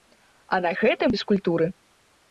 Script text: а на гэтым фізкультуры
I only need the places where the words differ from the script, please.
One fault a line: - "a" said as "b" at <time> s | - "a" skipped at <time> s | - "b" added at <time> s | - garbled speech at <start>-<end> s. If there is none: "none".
none